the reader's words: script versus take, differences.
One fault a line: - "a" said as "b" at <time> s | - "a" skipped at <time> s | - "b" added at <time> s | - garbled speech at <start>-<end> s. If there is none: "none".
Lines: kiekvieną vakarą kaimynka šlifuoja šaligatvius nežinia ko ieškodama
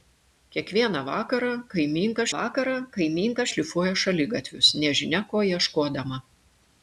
- "vakarą kaimynka" added at 2.4 s